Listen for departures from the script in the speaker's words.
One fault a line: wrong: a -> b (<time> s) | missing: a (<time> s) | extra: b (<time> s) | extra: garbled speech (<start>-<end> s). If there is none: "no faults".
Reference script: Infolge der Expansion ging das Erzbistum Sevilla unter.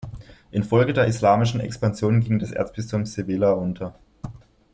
extra: Islamischen (1.1 s)